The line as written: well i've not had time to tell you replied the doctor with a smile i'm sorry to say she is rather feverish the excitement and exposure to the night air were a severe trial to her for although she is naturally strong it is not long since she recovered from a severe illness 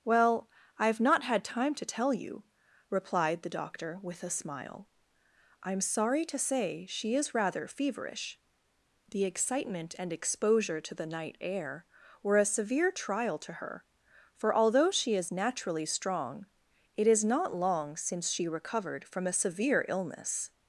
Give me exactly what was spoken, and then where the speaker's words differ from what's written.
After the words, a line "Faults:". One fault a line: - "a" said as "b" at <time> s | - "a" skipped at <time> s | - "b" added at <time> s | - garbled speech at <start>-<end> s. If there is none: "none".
well i've not had time to tell you replied the doctor with a smile i'm sorry to say she is rather feverish the excitement and exposure to the night air were a severe trial to her for although she is naturally strong it is not long since she recovered from a severe illness
Faults:
none